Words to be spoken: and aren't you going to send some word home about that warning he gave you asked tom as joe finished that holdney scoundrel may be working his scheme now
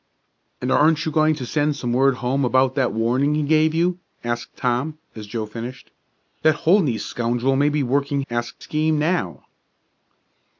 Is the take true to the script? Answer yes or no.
no